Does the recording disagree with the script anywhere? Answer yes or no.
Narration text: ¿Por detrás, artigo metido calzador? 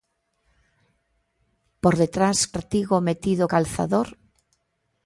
no